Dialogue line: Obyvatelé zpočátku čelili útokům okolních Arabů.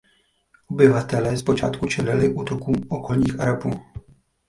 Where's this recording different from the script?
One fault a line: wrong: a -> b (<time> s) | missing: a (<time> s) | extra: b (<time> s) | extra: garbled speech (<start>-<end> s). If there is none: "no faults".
no faults